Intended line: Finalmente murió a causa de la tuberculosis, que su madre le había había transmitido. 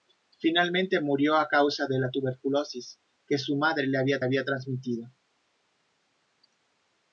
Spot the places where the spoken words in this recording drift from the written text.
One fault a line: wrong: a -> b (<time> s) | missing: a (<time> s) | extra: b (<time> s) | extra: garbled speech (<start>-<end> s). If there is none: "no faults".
no faults